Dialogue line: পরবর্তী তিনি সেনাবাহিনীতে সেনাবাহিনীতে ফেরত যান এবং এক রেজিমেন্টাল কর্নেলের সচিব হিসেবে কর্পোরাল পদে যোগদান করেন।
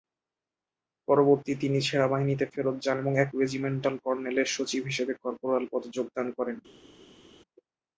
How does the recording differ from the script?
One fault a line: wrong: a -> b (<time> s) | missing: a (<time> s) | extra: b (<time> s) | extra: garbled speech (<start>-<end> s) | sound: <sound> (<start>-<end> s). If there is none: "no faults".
missing: সেনাবাহিনীতে (2.5 s)